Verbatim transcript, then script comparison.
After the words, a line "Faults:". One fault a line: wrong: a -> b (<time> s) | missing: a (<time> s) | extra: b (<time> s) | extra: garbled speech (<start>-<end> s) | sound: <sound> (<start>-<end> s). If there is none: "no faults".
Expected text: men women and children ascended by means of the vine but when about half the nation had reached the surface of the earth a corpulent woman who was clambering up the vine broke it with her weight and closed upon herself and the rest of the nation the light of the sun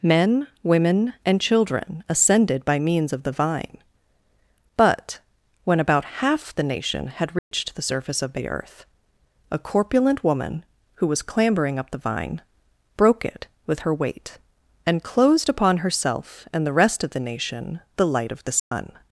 men women and children ascended by means of the vine but when about half the nation had reached the surface of the earth a corpulent woman who was clambering up the vine broke it with her weight and closed upon herself and the rest of the nation the light of the sun
Faults:
sound: dropout (7.4-7.5 s)
sound: dropout (18.6-18.7 s)